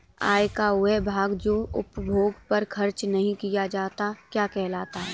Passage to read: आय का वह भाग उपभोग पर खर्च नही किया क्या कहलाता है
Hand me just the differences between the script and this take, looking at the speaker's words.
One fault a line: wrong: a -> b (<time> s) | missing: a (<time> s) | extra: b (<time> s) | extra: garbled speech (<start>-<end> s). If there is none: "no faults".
extra: जो (1.3 s)
extra: जाता (3.7 s)